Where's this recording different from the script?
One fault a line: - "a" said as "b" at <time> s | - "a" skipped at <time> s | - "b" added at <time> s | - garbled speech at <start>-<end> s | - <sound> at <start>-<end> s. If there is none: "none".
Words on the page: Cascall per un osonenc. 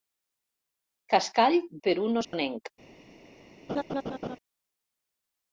- dropout at 2.2-2.3 s
- laugh at 3.7-4.4 s